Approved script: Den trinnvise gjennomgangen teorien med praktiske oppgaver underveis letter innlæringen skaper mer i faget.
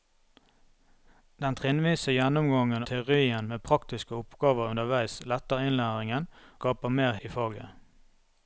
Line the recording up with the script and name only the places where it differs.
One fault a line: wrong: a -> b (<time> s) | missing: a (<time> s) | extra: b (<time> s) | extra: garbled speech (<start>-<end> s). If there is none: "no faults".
no faults